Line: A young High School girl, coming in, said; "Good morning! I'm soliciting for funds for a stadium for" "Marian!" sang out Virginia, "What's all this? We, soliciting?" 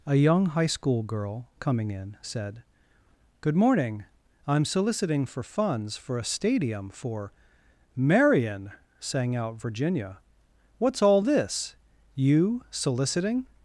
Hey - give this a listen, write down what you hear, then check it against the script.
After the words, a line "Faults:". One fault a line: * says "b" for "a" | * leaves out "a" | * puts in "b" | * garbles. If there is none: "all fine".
A young High School girl, coming in, said; "Good morning! I'm soliciting for funds for a stadium for" "Marian!" sang out Virginia, "What's all this? You, soliciting?"
Faults:
* says "You" for "We"